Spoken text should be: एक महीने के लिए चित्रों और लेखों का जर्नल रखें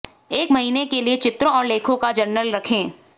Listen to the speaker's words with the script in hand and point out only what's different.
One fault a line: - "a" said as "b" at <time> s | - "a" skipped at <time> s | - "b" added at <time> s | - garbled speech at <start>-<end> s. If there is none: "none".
none